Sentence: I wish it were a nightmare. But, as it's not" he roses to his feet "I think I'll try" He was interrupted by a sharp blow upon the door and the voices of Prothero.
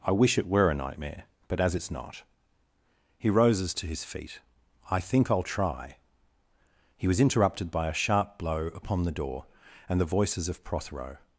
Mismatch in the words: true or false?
false